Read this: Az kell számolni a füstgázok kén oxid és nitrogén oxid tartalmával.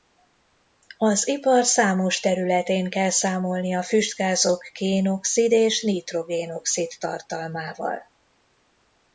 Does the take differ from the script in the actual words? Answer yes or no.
yes